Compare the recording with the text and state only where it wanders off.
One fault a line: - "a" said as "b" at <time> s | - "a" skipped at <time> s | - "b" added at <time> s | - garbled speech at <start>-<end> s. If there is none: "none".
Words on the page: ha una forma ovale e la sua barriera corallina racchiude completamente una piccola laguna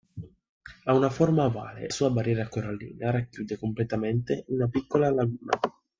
- "la" skipped at 1.9 s